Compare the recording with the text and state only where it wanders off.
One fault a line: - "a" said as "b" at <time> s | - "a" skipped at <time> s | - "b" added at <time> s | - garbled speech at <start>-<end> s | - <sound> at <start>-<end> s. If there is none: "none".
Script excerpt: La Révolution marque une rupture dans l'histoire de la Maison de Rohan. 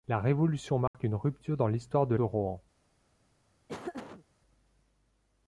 - dropout at 0.9-0.9 s
- "la Maison" skipped at 2.1 s
- laugh at 3.7-4.2 s